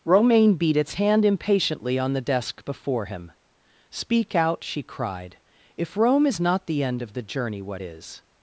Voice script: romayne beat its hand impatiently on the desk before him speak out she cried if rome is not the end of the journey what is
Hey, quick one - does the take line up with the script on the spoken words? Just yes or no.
yes